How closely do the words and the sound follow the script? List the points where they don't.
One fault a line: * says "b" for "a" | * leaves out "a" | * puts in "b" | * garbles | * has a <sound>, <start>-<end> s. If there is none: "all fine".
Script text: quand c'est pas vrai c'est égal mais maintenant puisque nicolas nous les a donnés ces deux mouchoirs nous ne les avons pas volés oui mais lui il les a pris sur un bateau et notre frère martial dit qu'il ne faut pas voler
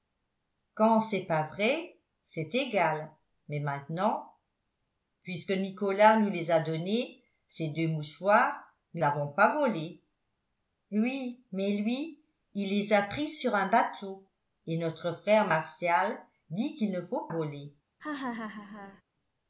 * leaves out "ne les"
* leaves out "pas"
* has a laugh, 18.0-19.0 s